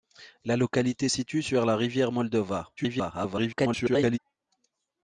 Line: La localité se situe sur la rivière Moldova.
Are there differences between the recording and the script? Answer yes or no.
yes